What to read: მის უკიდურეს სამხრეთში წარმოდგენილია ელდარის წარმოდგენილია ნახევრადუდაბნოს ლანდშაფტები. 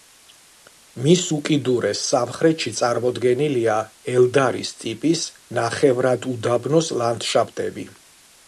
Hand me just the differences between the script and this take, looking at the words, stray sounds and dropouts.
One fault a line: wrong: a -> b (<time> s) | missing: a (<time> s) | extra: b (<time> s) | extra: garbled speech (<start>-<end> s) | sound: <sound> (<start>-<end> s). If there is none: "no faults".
wrong: წარმოდგენილია -> ტიპის (4.9 s)